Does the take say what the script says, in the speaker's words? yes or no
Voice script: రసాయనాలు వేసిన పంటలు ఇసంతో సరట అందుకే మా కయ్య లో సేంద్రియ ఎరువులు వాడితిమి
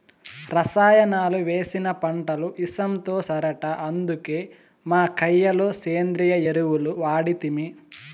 yes